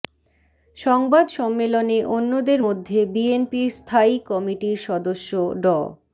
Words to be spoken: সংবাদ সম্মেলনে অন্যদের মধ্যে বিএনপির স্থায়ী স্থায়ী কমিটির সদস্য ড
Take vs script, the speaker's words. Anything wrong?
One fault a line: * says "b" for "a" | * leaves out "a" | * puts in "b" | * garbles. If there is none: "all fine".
* leaves out "স্থায়ী"